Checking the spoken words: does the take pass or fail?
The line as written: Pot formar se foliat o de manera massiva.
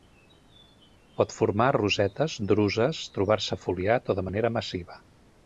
fail